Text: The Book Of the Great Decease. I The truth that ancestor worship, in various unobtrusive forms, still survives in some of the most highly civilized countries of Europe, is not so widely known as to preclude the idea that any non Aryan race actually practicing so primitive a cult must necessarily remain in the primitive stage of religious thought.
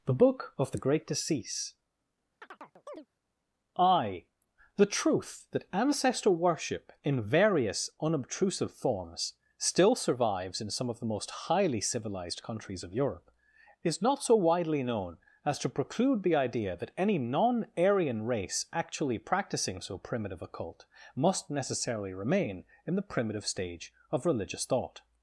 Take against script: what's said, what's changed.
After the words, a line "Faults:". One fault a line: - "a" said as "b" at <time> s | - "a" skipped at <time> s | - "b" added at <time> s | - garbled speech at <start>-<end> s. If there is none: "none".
The Book Of the Great Decease. I The truth that ancestor worship, in various unobtrusive forms, still survives in some of the most highly civilized countries of Europe, is not so widely known as to preclude the idea that any non Aryan race actually practicing so primitive a cult must necessarily remain in the primitive stage of religious thought.
Faults:
none